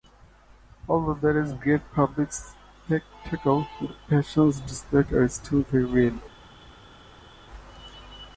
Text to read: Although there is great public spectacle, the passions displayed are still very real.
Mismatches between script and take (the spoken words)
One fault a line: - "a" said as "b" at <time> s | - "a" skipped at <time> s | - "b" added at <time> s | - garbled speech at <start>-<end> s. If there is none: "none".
none